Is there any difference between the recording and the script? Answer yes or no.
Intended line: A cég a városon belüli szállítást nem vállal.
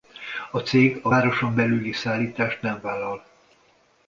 no